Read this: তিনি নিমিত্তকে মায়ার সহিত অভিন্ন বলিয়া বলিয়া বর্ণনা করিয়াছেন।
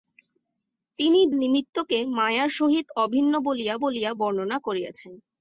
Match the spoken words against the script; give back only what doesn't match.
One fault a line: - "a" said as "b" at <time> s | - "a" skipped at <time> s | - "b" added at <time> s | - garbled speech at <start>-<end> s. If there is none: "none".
none